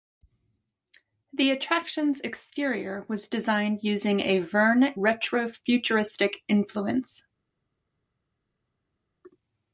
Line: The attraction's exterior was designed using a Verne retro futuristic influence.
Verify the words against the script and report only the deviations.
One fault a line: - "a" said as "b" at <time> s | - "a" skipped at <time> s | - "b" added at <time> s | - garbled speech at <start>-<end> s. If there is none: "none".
none